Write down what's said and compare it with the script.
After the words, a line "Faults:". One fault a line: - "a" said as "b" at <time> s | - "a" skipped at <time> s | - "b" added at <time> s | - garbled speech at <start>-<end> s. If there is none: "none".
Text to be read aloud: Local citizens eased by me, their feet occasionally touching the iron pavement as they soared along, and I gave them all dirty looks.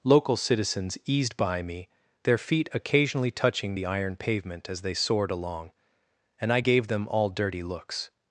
Local citizens eased by me, their feet occasionally touching the iron pavement as they soared along, and I gave them all dirty looks.
Faults:
none